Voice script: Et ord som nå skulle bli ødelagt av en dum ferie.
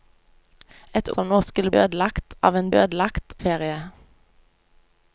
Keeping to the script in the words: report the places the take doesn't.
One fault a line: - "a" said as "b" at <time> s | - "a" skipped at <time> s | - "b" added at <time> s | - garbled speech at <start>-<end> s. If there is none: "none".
- "ord" skipped at 1.1 s
- "bli" skipped at 1.7 s
- "dum" said as "ødelagt" at 2.8 s